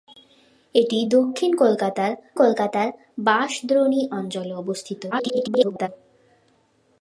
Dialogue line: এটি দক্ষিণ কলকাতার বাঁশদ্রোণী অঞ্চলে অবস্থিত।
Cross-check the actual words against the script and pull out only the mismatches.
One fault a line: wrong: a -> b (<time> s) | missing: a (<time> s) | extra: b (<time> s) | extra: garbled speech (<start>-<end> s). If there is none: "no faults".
extra: কলকাতার (2.3 s)
extra: garbled speech (5.1-5.9 s)